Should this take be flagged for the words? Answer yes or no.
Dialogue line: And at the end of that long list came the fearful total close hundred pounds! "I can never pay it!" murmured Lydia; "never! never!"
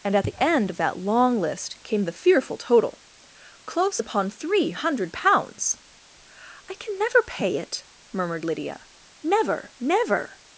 yes